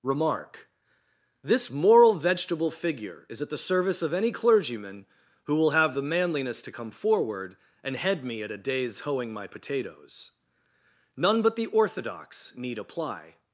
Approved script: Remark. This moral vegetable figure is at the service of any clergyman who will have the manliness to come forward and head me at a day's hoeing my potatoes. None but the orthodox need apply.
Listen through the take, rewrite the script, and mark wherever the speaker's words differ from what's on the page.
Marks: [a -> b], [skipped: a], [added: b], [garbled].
Remark. This moral vegetable figure is at the service of any clergyman who will have the manliness to come forward and head me at a day's hoeing my potatoes. None but the orthodox need apply.